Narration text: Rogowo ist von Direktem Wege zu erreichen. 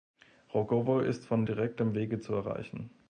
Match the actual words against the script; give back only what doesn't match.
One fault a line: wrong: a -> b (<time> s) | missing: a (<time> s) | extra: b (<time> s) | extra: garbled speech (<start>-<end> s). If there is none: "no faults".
no faults